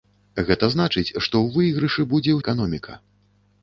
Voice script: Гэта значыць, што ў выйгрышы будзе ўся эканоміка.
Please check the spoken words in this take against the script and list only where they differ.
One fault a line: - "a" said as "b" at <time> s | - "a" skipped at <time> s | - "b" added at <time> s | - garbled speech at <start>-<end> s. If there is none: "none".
- "ўся" skipped at 2.4 s